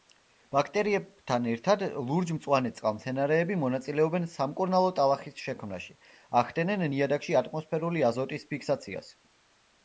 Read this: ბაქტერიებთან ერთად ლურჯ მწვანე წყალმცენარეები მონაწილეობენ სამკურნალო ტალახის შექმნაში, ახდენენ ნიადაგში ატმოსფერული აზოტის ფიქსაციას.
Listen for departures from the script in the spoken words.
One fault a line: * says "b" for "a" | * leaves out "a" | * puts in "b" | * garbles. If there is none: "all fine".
all fine